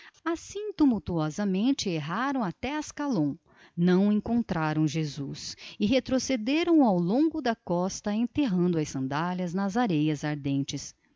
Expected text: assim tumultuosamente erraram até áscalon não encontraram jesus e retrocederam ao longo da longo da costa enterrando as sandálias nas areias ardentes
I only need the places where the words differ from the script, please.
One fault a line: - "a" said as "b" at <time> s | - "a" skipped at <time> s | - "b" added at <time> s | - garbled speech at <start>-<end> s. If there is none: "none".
- "longo da" skipped at 7.5 s